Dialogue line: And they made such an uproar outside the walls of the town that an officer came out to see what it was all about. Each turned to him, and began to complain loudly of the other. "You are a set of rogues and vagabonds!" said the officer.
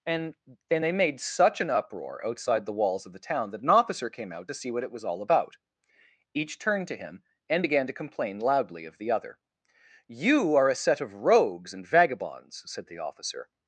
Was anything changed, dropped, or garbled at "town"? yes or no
no